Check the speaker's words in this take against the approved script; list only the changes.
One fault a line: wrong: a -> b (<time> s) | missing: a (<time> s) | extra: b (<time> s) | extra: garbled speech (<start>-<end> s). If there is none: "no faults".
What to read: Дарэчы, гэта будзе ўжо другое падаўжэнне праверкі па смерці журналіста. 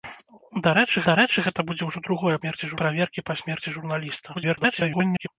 extra: дарэчы (1.1 s)
wrong: падаўжэнне -> смерці (2.4 s)
extra: garbled speech (4.3-5.3 s)